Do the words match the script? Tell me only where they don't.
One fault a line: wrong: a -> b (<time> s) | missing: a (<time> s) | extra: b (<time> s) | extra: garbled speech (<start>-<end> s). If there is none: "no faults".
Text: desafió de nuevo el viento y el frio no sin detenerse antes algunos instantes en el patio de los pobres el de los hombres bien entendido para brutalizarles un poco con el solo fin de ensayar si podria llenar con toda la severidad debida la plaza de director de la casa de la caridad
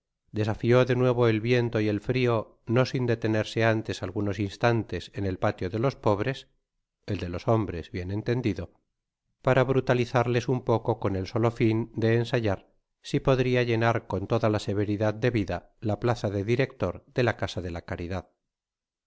no faults